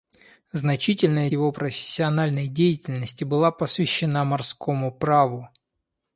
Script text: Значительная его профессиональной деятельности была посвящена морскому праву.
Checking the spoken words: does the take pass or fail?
pass